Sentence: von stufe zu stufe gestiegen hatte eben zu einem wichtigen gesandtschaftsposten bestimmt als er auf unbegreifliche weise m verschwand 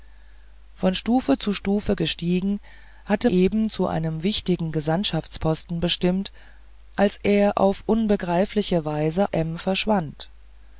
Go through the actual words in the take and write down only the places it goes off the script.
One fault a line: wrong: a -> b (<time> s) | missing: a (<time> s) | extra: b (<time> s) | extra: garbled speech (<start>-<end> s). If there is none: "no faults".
no faults